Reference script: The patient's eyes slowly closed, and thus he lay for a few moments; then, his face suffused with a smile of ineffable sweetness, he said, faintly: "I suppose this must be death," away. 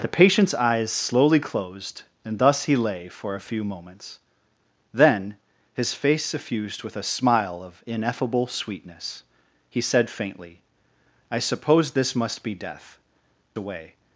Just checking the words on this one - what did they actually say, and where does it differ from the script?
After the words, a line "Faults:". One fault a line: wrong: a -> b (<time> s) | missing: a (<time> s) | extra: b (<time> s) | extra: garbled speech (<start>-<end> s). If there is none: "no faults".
The patient's eyes slowly closed, and thus he lay for a few moments; then, his face suffused with a smile of ineffable sweetness, he said, faintly: "I suppose this must be death," away.
Faults:
no faults